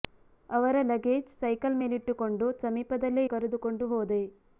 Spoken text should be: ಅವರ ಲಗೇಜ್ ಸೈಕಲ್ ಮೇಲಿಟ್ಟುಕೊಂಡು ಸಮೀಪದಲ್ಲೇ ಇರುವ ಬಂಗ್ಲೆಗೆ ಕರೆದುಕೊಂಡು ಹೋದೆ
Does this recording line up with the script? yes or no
no